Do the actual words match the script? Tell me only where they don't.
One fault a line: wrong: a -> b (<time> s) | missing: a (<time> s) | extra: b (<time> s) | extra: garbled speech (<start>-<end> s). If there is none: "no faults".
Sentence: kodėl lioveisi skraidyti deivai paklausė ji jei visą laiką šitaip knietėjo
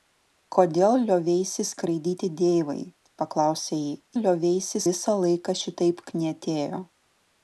wrong: jei -> lioveisi (4.2 s)